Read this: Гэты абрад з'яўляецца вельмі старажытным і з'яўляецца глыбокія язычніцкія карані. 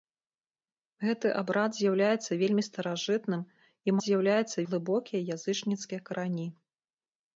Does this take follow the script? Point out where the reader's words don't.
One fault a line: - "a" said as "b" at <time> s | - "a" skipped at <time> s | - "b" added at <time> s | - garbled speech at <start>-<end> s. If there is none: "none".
none